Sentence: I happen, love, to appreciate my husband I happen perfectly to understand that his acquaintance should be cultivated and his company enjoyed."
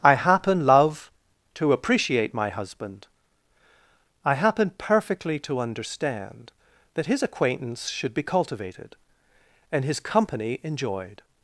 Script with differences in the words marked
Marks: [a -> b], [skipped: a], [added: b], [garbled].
I happen, love, to appreciate my husband I happen perfectly to understand that his acquaintance should be cultivated and his company enjoyed."